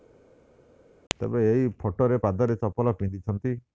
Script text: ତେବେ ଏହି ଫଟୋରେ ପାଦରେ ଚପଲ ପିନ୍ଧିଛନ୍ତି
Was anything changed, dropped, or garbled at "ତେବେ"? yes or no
no